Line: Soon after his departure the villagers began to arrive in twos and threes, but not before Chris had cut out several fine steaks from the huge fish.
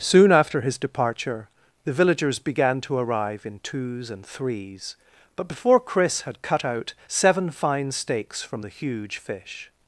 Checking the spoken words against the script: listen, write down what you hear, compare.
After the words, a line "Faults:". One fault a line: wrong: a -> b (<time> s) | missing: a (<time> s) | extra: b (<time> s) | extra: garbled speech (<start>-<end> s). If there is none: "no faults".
Soon after his departure the villagers began to arrive in twos and threes, but before Chris had cut out seven fine steaks from the huge fish.
Faults:
missing: not (5.5 s)
wrong: several -> seven (7.1 s)